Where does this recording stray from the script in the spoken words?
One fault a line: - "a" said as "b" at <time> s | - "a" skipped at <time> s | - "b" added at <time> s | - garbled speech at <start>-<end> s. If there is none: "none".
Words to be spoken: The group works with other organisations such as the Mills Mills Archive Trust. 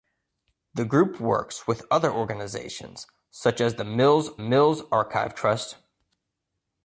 none